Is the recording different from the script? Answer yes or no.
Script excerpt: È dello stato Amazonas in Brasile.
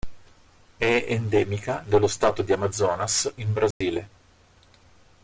yes